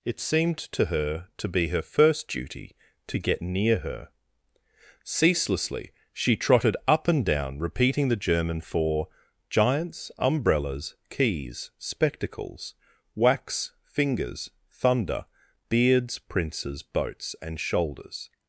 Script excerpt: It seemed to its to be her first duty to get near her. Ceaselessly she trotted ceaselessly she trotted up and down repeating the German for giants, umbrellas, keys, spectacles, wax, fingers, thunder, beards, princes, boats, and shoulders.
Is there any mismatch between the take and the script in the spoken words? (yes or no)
yes